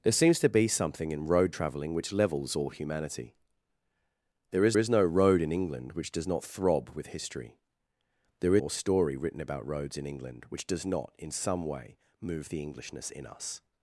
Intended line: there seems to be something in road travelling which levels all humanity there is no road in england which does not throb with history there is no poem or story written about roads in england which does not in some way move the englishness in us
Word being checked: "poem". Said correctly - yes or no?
no